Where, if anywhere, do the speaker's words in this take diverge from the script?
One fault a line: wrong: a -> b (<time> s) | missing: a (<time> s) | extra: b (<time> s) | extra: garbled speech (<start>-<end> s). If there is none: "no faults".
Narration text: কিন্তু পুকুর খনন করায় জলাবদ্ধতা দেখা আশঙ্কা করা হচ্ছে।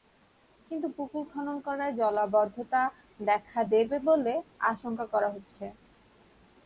extra: দেবে বলে (3.7 s)